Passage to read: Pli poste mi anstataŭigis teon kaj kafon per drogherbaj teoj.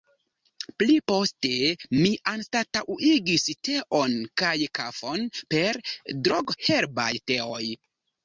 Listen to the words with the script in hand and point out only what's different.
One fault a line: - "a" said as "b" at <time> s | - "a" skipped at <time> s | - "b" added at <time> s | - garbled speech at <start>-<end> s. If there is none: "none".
none